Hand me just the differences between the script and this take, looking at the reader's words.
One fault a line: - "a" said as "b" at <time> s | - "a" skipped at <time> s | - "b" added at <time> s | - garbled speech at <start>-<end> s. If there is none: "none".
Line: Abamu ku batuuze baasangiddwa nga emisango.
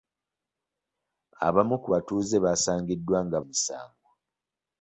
none